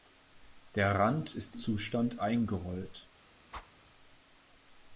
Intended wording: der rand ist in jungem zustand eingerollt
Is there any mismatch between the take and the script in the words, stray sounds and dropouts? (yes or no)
yes